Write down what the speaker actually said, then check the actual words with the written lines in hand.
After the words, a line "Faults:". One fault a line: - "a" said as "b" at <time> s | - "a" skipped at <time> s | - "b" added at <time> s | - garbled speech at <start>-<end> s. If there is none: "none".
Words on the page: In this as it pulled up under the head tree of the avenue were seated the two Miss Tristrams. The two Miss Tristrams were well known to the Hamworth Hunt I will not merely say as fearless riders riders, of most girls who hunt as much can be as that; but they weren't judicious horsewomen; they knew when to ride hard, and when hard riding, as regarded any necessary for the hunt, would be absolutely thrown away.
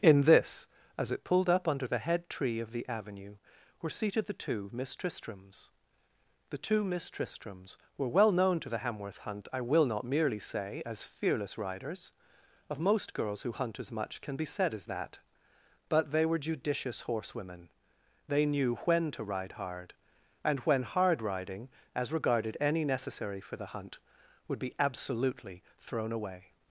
In this as it pulled up under the head tree of the avenue were seated the two Miss Tristrams. The two Miss Tristrams were well known to the Hamworth Hunt I will not merely say as fearless riders, of most girls who hunt as much can be said as that; but they were judicious horsewomen; they knew when to ride hard, and when hard riding, as regarded any necessary for the hunt, would be absolutely thrown away.
Faults:
- "riders" skipped at 12.1 s
- "said" added at 14.4 s
- "weren't" said as "were" at 16.2 s